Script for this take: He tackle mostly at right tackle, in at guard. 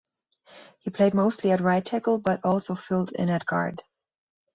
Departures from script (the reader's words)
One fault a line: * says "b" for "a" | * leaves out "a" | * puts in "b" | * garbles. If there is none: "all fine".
* says "played" for "tackle"
* puts in "but also filled"